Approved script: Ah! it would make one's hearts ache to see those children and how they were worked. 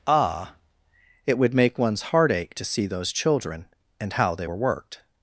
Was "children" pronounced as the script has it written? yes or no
yes